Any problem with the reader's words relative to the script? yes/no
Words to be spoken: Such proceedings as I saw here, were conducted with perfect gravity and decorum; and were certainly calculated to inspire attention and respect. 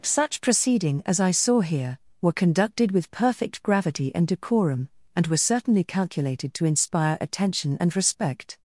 yes